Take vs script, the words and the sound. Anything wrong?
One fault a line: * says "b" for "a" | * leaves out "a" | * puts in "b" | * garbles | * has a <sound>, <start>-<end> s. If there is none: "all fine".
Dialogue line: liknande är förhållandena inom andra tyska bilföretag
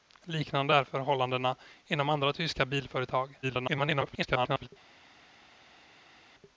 * garbles